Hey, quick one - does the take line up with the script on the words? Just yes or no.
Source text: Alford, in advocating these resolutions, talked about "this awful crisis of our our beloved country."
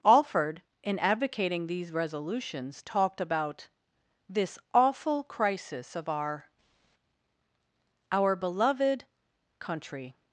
yes